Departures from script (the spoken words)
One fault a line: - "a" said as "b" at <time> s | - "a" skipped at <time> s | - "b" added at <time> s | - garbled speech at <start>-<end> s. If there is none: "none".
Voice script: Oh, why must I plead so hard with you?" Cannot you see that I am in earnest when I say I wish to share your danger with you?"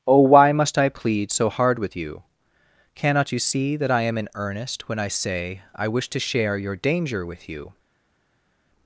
none